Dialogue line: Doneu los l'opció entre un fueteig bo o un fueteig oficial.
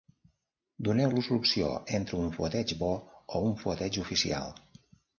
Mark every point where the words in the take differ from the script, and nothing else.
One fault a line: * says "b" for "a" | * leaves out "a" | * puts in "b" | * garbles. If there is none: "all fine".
all fine